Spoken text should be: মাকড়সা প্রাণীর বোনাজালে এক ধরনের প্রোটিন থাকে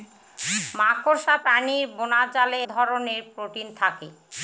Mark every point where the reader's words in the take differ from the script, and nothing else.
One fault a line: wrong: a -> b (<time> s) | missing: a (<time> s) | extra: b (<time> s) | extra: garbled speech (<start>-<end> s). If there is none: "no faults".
missing: এক (2.6 s)